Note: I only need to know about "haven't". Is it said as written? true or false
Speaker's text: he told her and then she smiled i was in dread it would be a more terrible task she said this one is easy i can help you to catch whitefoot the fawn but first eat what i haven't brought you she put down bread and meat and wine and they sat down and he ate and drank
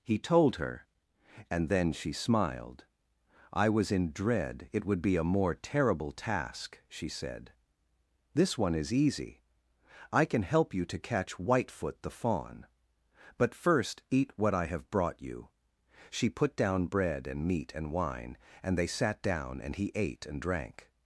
false